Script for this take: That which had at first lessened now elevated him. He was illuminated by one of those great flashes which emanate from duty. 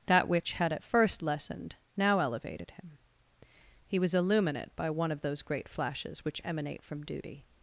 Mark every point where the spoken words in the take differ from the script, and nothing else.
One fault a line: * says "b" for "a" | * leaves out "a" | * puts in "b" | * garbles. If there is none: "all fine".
* says "illuminate" for "illuminated"